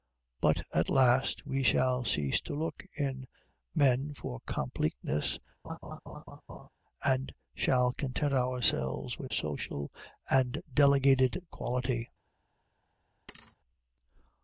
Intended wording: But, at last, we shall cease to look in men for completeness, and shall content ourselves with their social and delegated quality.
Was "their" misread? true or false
true